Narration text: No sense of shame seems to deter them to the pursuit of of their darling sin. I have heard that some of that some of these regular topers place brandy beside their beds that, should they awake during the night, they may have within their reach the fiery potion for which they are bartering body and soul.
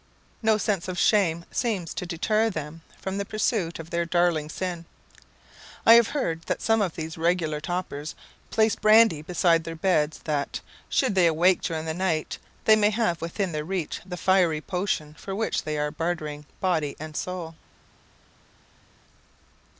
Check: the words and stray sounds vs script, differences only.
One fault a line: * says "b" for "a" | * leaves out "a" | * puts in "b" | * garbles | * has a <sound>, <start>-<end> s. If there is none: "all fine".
* says "from" for "to"
* leaves out "of"
* leaves out "that some of"